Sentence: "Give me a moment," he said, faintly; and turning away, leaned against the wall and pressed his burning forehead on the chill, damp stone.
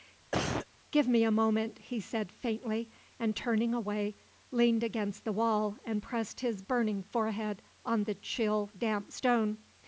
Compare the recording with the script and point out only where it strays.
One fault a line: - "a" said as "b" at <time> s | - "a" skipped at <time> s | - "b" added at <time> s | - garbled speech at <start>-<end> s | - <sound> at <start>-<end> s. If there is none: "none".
- cough at 0.3-0.7 s